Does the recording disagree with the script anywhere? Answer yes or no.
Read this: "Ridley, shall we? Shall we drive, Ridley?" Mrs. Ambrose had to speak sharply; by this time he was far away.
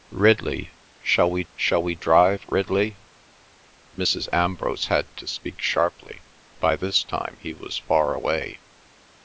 no